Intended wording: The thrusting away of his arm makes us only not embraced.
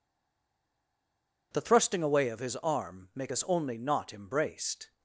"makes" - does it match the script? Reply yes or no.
no